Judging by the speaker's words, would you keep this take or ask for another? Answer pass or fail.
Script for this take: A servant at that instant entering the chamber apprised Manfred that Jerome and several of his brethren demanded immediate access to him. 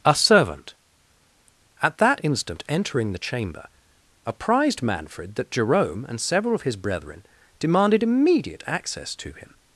pass